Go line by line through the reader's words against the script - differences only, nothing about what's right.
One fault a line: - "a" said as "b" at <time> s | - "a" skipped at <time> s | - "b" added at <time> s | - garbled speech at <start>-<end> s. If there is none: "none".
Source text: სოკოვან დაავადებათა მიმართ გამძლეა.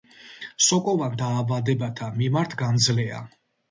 none